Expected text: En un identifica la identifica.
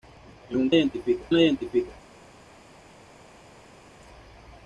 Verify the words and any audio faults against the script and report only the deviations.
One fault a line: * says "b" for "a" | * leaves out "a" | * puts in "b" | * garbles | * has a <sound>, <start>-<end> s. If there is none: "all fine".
all fine